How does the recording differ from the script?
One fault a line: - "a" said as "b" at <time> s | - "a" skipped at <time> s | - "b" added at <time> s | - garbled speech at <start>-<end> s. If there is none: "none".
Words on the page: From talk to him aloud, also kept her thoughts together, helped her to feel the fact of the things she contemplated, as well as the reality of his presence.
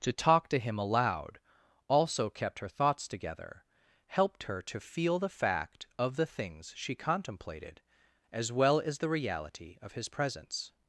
- "From" said as "To" at 0.0 s